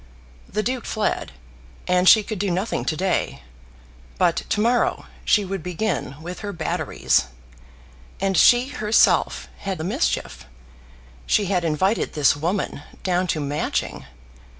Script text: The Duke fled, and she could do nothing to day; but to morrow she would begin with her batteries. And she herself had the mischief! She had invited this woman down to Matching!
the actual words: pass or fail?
pass